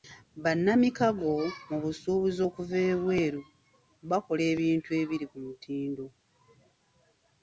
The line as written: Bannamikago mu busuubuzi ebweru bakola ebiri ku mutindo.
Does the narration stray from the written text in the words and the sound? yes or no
yes